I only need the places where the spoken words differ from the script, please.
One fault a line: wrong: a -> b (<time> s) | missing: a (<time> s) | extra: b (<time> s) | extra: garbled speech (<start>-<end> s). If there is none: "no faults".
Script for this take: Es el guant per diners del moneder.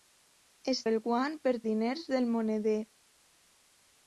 no faults